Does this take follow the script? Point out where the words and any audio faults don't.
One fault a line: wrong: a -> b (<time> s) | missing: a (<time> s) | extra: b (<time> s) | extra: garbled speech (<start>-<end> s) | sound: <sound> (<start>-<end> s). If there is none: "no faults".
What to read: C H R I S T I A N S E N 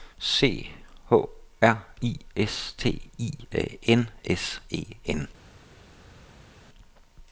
no faults